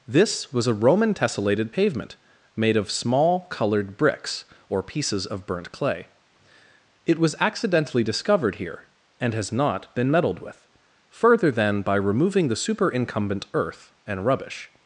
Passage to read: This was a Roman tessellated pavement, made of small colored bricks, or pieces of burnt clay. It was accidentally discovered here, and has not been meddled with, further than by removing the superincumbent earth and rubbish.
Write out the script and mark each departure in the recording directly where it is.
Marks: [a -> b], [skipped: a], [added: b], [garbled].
This was a Roman tessellated pavement, made of small colored bricks, or pieces of burnt clay. It was accidentally discovered here, and has not been meddled with, further than by removing the superincumbent earth and rubbish.